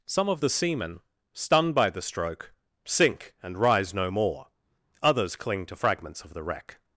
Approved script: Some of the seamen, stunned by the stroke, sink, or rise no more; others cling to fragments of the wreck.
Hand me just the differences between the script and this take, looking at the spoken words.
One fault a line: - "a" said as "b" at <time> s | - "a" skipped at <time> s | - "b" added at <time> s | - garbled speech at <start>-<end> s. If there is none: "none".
- "or" said as "and" at 3.4 s